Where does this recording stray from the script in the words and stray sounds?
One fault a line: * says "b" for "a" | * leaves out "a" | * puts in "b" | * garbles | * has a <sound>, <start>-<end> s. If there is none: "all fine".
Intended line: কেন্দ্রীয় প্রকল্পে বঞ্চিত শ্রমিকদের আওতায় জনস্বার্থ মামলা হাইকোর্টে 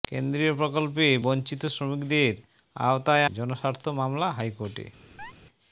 * has a chirp, 5.2-5.3 s